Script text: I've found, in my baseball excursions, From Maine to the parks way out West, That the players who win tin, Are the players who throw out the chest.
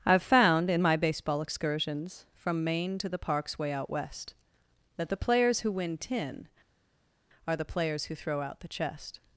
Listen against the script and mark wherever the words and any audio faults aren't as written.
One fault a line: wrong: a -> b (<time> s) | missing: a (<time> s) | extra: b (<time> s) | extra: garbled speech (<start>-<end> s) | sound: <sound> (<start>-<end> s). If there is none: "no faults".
no faults